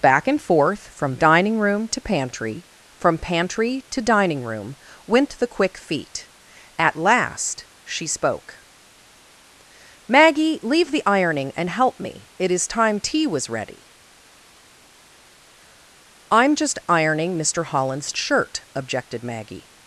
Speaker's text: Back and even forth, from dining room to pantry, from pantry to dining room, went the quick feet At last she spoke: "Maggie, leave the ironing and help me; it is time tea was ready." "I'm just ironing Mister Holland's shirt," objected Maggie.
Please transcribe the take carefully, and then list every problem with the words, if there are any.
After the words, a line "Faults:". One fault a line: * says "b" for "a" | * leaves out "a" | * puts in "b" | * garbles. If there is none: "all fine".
Back and forth, from dining room to pantry, from pantry to dining room, went the quick feet At last she spoke: "Maggie, leave the ironing and help me; it is time tea was ready." "I'm just ironing Mister Holland's shirt," objected Maggie.
Faults:
* leaves out "even"